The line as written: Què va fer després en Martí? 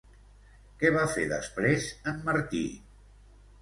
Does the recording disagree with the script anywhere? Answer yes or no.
no